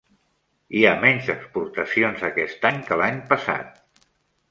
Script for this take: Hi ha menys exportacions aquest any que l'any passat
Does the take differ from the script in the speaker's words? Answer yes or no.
no